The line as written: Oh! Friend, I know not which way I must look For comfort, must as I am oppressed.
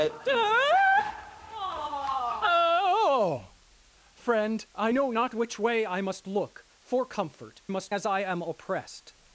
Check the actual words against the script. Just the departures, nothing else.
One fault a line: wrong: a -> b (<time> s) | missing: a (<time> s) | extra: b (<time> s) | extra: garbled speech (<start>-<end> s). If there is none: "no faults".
no faults